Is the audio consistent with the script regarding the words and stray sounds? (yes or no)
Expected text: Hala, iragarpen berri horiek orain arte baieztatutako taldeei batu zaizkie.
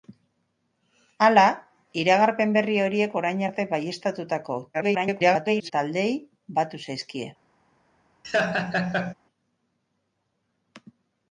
no